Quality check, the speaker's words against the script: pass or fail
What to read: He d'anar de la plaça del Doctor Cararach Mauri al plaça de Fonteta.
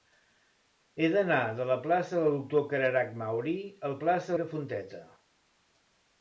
pass